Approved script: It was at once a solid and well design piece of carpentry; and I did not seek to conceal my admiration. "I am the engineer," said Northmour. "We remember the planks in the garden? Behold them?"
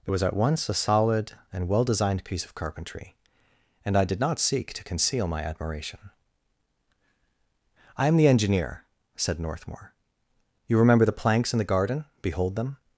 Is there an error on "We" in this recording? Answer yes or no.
yes